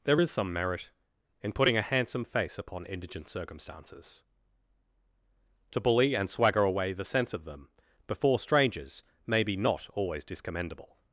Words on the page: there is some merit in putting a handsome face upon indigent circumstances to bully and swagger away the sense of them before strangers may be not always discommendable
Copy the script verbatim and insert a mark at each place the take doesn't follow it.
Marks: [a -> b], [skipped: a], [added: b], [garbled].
there is some merit in putting a handsome face upon indigent circumstances to bully and swagger away the sense of them before strangers may be not always discommendable